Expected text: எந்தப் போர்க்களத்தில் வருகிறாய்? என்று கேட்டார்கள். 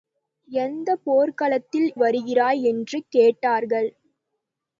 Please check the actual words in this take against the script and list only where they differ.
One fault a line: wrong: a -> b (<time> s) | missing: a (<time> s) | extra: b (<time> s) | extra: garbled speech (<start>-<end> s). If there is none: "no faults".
no faults